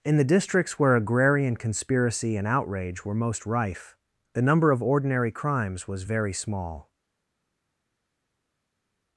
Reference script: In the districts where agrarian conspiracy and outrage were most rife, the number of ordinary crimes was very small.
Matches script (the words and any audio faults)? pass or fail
pass